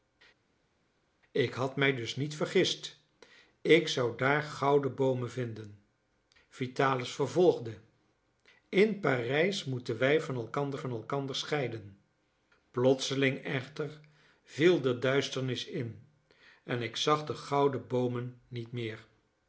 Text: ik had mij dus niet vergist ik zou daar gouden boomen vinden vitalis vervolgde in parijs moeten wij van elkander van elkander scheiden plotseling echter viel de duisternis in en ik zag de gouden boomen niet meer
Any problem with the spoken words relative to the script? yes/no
no